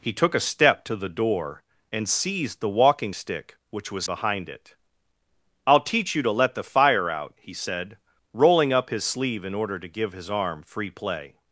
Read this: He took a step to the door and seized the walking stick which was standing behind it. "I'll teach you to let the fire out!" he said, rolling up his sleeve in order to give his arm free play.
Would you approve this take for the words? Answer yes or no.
no